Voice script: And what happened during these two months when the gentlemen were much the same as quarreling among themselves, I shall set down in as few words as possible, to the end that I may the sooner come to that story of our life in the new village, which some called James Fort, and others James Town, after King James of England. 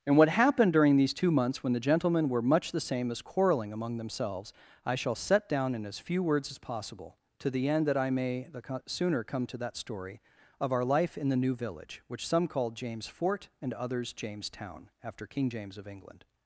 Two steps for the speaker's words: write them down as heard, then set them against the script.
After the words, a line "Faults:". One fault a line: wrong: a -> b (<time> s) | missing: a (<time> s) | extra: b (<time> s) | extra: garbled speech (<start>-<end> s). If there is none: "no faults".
And what happened during these two months when the gentlemen were much the same as quarreling among themselves, I shall set down in as few words as possible, to the end that I may the co sooner come to that story of our life in the new village, which some called James Fort, and others James Town, after King James of England.
Faults:
extra: co (8.6 s)